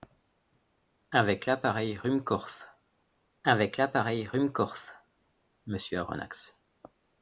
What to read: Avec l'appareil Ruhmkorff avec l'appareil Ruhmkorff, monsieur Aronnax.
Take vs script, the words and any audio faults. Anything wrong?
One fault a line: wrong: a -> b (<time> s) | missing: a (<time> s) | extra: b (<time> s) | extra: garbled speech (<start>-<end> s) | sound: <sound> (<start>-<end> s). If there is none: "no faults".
no faults